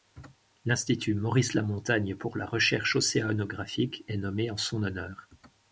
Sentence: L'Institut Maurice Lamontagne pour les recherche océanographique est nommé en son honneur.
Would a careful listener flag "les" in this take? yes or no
yes